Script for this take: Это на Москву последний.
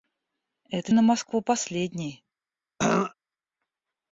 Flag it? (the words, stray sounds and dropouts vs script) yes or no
yes